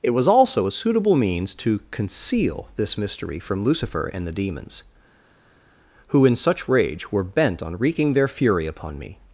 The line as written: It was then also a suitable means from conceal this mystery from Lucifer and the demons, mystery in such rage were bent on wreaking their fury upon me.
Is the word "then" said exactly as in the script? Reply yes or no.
no